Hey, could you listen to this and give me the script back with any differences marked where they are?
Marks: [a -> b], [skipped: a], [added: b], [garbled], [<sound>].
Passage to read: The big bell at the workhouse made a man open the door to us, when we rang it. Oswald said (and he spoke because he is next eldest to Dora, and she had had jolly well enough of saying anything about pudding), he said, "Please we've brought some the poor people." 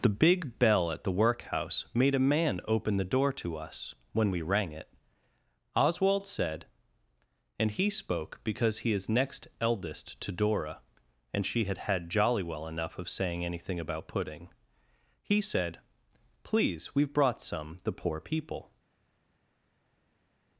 The big bell at the workhouse made a man open the door to us, when we rang it. Oswald said (and he spoke because he is next eldest to Dora, and she had had jolly well enough of saying anything about pudding), he said, "Please we've brought some the poor people."